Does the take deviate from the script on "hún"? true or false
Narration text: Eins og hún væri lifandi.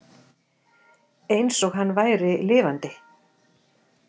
true